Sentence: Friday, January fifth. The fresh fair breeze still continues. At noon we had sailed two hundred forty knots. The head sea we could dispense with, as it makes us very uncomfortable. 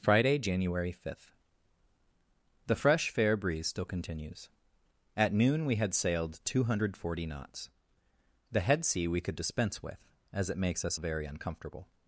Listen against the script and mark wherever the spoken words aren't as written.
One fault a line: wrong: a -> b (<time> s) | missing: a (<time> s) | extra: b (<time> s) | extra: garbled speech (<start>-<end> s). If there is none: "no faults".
no faults